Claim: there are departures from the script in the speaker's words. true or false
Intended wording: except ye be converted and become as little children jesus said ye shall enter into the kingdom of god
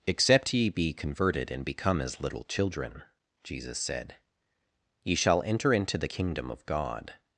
false